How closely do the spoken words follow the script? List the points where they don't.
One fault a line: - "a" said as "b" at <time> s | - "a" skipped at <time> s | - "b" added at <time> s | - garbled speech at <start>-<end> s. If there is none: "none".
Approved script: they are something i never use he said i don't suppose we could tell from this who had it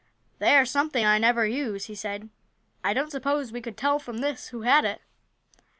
none